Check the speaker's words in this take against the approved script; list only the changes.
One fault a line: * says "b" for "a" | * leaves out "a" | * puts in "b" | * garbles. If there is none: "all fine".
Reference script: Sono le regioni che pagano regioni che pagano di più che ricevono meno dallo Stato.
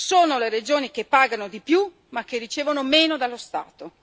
* leaves out "regioni che pagano"
* puts in "ma"